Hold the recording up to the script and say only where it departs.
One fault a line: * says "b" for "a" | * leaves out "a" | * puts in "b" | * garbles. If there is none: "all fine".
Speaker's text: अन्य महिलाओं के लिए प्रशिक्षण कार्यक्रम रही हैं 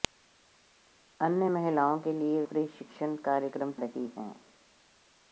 all fine